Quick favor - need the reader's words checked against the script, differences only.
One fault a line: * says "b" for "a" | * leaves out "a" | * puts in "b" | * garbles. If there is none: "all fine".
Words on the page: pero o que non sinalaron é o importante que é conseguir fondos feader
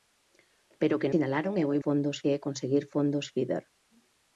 * leaves out "non"
* says "fondos" for "importante"